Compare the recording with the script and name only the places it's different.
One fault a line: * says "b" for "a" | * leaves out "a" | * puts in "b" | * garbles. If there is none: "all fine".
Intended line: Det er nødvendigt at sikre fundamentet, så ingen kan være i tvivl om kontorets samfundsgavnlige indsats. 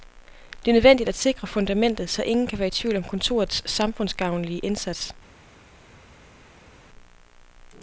all fine